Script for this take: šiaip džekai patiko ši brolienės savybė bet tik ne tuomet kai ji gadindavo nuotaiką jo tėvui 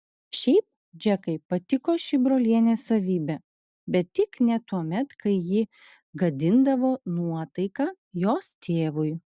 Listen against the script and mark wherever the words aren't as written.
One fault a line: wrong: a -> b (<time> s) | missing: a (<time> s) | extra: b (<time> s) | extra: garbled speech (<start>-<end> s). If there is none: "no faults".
wrong: jo -> jos (8.3 s)